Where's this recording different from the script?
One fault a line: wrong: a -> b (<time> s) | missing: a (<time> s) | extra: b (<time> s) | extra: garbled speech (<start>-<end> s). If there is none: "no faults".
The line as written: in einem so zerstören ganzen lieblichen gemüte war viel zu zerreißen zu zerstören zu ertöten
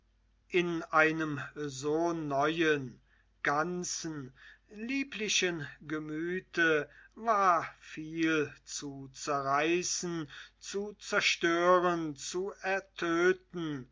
wrong: zerstören -> neuen (2.1 s)